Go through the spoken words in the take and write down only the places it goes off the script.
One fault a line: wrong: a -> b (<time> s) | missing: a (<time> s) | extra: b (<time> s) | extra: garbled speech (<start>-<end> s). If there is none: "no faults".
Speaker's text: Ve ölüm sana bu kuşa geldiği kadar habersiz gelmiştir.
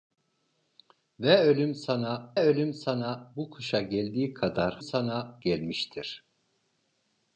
extra: ölüm sana (2.4 s)
wrong: habersiz -> sana (4.8 s)